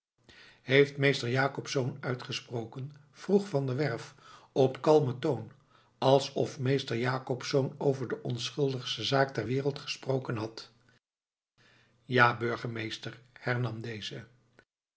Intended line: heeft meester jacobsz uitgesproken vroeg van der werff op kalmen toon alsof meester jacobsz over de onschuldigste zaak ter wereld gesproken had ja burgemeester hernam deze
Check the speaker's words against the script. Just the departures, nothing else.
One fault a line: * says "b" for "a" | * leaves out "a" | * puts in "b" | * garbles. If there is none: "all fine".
all fine